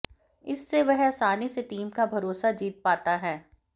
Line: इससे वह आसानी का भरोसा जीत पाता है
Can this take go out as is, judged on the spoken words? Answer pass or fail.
fail